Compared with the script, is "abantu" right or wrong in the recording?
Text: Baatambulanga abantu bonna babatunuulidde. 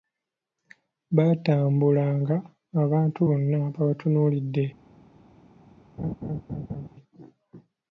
right